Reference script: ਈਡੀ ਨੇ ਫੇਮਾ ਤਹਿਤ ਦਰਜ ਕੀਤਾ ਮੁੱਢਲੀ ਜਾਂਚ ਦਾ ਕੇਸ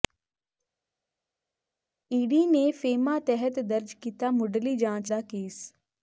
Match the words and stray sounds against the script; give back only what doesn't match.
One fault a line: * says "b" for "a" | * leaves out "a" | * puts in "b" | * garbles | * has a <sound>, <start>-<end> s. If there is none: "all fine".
all fine